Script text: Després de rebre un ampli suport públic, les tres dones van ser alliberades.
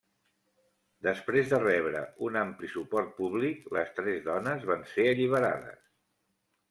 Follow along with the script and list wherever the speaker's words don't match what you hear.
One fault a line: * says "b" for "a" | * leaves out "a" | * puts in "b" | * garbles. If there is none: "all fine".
all fine